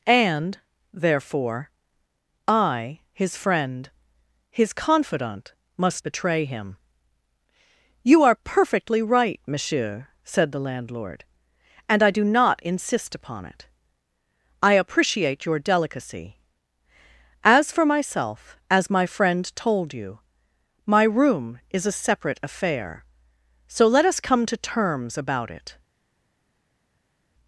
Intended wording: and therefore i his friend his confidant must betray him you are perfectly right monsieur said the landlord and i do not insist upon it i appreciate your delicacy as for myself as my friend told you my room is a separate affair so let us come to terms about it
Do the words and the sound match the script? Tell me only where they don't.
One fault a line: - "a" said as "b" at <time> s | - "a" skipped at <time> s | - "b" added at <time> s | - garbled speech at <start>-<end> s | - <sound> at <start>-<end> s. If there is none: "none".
none